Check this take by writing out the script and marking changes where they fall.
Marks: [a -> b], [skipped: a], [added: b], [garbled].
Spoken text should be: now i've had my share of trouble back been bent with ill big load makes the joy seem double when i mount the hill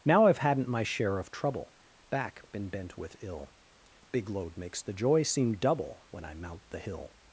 now i've [had -> hadn't] my share of trouble back been bent with ill big load makes the joy seem double when i mount the hill